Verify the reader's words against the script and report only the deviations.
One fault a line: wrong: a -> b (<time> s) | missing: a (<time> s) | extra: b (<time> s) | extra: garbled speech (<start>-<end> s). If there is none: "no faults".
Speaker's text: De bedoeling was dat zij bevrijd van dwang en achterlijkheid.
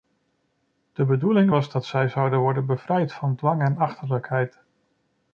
extra: zouden worden (2.1 s)